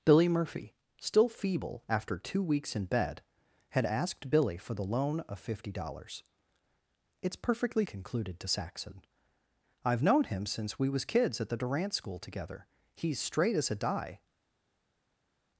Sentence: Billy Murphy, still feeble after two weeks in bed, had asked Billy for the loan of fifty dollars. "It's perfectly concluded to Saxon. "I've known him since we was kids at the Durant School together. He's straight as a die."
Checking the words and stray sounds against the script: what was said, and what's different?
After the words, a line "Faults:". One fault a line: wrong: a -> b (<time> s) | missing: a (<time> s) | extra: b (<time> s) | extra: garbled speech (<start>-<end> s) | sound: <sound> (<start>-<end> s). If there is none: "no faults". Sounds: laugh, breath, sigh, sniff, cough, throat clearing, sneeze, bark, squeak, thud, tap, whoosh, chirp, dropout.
Billy Murphy, still feeble after two weeks in bed, had asked Billy for the loan of fifty dollars. "It's perfectly concluded to Saxon. "I've known him since we was kids at the Durant School together. He's straight as a die."
Faults:
no faults